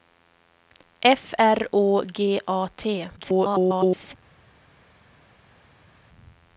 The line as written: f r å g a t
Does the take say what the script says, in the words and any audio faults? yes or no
no